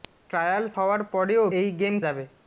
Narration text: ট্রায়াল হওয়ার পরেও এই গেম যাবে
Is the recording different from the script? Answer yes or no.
no